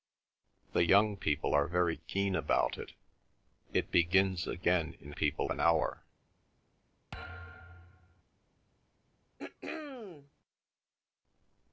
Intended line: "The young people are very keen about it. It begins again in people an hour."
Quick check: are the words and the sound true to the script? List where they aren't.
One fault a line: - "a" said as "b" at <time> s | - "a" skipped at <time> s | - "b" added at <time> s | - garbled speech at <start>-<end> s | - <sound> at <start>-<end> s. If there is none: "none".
- thud at 7.1-8.2 s
- throat clearing at 9.4-10.3 s